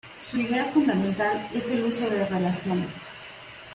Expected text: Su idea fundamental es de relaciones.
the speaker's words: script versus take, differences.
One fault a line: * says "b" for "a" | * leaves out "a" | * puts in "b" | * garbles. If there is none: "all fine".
* puts in "el uso"